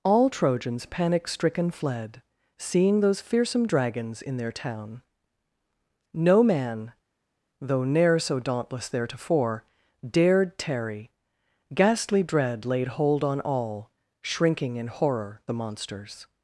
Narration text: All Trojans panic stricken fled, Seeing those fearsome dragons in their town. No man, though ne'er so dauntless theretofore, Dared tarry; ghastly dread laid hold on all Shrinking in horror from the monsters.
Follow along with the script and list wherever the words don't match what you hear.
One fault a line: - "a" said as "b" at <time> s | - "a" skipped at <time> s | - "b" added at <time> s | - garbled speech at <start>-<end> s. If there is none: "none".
- "from" skipped at 15.4 s